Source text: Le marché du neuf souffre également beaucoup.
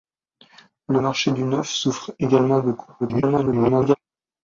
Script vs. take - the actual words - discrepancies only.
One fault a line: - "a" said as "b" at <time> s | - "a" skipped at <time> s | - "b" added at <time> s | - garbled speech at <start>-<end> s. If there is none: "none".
- garbled speech at 3.0-4.0 s